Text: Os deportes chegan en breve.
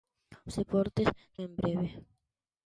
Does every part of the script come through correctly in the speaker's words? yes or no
no